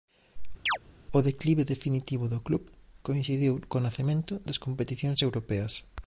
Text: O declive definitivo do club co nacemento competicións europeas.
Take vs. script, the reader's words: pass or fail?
fail